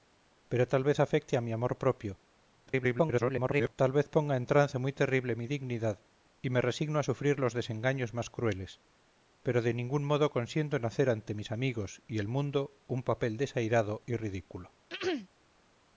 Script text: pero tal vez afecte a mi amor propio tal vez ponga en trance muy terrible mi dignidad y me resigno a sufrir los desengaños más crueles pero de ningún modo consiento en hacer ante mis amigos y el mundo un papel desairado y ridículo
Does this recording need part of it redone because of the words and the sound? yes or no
yes